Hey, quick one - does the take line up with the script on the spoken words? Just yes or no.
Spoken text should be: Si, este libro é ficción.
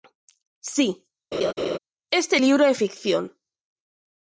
yes